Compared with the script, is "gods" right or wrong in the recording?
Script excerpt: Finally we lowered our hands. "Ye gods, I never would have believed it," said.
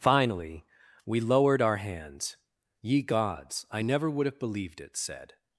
right